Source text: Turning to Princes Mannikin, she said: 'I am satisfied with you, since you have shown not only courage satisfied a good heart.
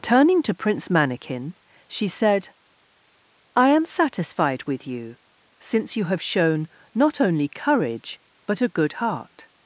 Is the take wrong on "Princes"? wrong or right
wrong